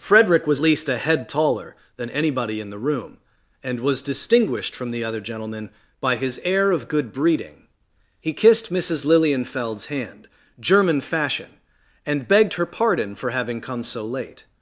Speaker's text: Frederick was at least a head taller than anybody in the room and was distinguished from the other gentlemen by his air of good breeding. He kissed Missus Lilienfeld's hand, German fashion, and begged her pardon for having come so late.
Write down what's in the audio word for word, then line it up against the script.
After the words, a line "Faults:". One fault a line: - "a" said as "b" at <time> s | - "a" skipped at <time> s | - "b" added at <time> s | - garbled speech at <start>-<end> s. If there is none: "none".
Frederick was least a head taller than anybody in the room and was distinguished from the other gentlemen by his air of good breeding. He kissed Missus Lilienfeld's hand, German fashion, and begged her pardon for having come so late.
Faults:
- "at" skipped at 0.6 s